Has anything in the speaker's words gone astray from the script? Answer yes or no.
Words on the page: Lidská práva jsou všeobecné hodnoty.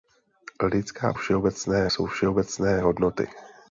yes